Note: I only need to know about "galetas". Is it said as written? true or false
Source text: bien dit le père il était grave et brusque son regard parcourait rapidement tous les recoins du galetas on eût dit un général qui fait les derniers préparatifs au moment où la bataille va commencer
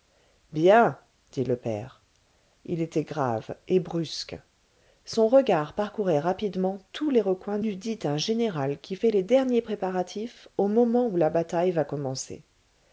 false